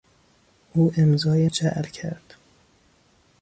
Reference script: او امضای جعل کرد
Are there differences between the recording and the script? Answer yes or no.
no